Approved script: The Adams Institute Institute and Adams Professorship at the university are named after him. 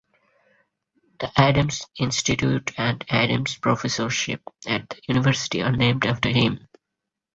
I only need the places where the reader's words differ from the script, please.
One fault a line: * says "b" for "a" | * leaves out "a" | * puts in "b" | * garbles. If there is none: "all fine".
* leaves out "Institute"